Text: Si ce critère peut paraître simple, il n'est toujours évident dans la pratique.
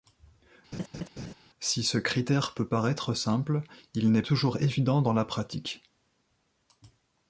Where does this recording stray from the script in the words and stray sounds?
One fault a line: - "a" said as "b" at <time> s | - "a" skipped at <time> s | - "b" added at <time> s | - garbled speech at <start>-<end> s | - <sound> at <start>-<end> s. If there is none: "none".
- laugh at 0.7-1.3 s